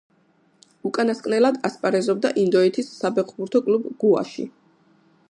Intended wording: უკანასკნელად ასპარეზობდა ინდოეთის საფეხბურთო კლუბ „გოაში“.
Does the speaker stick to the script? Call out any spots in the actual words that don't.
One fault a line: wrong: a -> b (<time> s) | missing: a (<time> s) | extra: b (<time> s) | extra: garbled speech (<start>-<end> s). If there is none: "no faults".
no faults